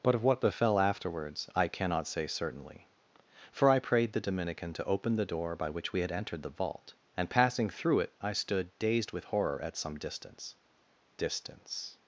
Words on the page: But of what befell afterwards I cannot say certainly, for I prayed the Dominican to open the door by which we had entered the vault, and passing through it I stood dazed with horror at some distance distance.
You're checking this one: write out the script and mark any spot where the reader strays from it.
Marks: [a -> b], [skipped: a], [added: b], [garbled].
But of what befell afterwards I cannot say certainly, for I prayed the Dominican to open the door by which we had entered the vault, and passing through it I stood dazed with horror at some distance distance.